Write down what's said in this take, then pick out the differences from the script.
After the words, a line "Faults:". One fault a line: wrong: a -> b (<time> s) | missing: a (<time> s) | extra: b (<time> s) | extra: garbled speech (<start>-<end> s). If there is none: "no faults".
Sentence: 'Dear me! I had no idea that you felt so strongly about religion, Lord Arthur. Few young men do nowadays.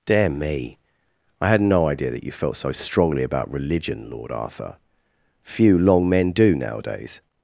'Dear me! I had no idea that you felt so strongly about religion, Lord Arthur. Few long men do nowadays.
Faults:
wrong: young -> long (5.8 s)